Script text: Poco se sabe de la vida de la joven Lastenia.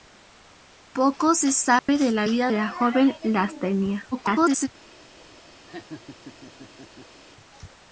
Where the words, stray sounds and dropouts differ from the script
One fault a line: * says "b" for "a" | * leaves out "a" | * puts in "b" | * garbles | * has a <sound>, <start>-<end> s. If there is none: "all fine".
* has a dropout, 1.8-1.9 s
* leaves out "de"
* garbles
* has a laugh, 5.7-7.2 s